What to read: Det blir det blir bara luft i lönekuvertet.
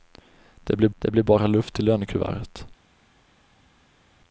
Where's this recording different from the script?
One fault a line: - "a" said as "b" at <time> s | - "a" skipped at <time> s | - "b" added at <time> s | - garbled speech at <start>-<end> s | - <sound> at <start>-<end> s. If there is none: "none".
none